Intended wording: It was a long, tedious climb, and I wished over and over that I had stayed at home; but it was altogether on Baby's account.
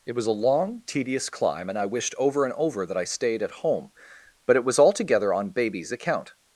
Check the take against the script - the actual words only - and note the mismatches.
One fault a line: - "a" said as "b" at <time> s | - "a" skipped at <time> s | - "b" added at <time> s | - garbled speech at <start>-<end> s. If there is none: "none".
- "had" skipped at 3.0 s